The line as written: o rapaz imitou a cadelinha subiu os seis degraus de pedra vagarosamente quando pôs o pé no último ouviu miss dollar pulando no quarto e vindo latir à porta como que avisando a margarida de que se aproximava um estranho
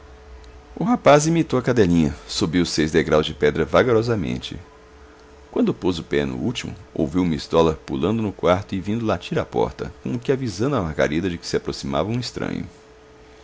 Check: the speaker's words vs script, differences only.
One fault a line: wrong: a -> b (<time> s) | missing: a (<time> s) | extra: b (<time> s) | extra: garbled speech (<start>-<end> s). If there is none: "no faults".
no faults